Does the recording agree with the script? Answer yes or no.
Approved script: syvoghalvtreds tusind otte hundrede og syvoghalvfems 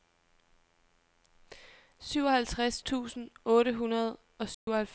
yes